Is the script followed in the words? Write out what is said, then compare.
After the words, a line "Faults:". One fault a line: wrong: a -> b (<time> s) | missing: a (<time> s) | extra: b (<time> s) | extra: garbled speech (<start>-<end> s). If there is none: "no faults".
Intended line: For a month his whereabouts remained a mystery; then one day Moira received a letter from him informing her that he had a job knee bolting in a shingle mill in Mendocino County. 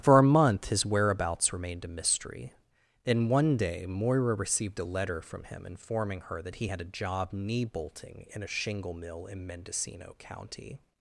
For a month his whereabouts remained a mystery; then one day Moira received a letter from him informing her that he had a job knee bolting in a shingle mill in Mendocino County.
Faults:
no faults